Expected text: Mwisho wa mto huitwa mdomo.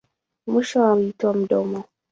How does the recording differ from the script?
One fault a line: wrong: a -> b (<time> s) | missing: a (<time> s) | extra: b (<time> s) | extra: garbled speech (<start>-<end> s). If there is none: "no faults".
missing: mto (0.9 s)